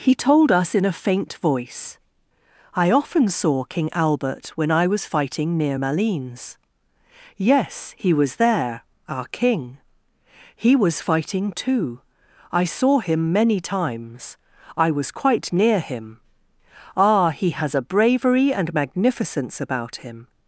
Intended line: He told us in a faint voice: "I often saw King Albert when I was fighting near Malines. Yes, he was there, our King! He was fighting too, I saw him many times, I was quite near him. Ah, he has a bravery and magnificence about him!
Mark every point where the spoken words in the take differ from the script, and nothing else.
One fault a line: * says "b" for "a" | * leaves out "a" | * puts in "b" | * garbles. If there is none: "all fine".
all fine